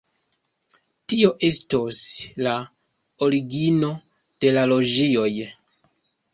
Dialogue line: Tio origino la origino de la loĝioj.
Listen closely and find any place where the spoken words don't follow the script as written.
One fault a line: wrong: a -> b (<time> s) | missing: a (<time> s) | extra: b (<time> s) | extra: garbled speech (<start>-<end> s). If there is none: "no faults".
wrong: origino -> estos (1.5 s)